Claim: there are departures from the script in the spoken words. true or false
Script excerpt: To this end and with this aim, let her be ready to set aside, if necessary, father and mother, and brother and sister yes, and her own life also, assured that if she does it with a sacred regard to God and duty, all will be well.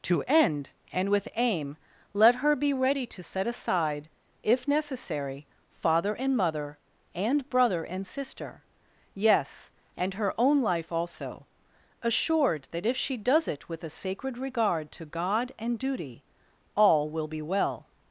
true